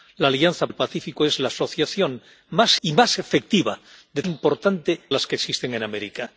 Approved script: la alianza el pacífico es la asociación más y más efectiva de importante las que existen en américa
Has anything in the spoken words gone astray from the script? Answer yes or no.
no